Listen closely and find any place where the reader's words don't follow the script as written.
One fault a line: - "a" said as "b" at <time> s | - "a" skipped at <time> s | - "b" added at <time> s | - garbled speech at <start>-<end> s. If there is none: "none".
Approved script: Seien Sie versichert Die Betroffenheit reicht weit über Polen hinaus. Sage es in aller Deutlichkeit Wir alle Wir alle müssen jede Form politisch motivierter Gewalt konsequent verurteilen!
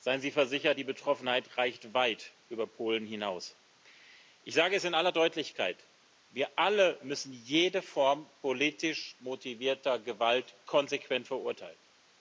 - "Ich" added at 4.4 s
- "Wir alle" skipped at 7.0 s